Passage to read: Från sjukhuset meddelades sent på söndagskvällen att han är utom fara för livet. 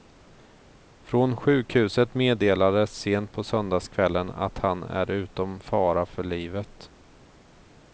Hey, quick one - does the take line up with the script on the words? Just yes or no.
yes